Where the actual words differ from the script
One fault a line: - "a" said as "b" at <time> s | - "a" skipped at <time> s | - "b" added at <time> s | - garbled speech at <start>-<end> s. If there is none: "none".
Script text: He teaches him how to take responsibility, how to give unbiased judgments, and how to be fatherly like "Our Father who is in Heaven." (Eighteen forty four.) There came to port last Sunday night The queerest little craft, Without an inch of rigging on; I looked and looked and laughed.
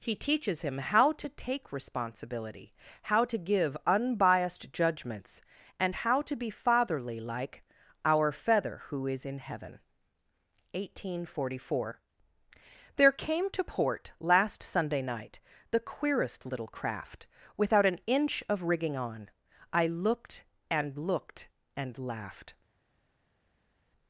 - "Father" said as "Feather" at 8.3 s